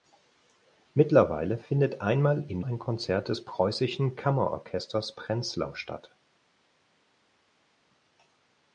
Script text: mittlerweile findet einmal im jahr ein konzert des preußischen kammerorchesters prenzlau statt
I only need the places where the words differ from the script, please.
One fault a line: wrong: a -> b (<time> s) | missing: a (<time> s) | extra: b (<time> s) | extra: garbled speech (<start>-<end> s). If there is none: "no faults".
missing: jahr (2.6 s)